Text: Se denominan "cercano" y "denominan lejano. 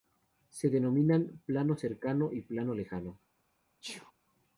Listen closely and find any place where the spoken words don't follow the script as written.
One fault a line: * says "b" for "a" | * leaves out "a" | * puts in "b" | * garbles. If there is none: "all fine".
* puts in "plano"
* says "plano" for "denominan"